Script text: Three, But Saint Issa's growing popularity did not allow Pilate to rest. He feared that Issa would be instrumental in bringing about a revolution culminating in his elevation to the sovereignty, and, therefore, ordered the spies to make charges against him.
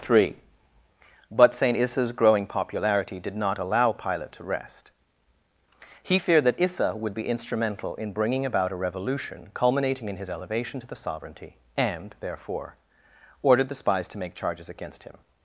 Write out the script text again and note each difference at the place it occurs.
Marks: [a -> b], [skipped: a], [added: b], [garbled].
Three, But Saint Issa's growing popularity did not allow Pilate to rest. He feared that Issa would be instrumental in bringing about a revolution culminating in his elevation to the sovereignty, and, therefore, ordered the spies to make charges against him.